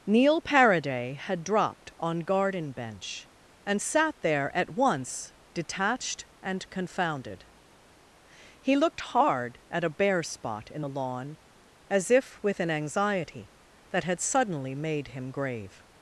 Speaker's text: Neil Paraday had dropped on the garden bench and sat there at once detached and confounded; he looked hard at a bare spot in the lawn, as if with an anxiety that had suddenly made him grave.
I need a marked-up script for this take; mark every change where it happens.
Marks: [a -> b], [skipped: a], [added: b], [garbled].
Neil Paraday had dropped on [skipped: the] garden bench and sat there at once detached and confounded; he looked hard at a bare spot in the lawn, as if with an anxiety that had suddenly made him grave.